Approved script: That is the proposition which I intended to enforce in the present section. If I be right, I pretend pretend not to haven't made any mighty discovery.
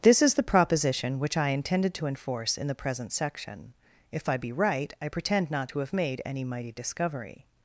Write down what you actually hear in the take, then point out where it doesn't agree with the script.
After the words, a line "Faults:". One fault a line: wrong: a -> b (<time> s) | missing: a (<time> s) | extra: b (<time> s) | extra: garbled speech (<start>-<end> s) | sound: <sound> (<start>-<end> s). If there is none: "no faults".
This is the proposition which I intended to enforce in the present section. If I be right, I pretend not to have made any mighty discovery.
Faults:
wrong: That -> This (0.0 s)
missing: pretend (5.5 s)
wrong: haven't -> have (5.8 s)